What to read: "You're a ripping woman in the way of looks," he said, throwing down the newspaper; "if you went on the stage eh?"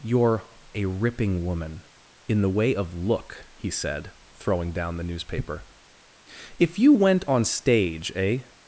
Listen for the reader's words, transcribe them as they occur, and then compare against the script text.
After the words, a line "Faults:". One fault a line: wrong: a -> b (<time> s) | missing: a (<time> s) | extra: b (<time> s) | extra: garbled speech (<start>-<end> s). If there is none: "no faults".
"You're a ripping woman in the way of look," he said, throwing down the newspaper; "if you went on stage eh?"
Faults:
wrong: looks -> look (2.9 s)
missing: the (7.4 s)